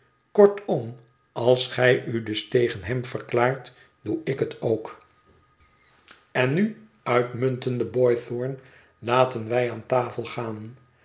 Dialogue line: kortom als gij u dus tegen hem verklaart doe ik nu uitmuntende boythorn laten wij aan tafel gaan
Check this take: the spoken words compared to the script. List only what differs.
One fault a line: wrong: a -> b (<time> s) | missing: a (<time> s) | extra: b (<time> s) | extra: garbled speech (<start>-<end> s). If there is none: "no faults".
extra: het ook en (4.4 s)